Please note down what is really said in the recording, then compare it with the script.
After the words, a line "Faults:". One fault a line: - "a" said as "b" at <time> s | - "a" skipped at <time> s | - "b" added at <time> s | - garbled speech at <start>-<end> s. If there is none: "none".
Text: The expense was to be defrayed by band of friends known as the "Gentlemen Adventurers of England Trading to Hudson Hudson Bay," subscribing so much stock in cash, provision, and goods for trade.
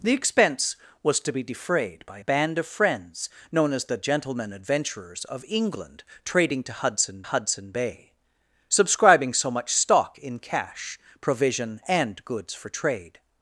The expense was to be defrayed by band of friends known as the "Gentlemen Adventurers of England Trading to Hudson Hudson Bay," subscribing so much stock in cash, provision, and goods for trade.
Faults:
none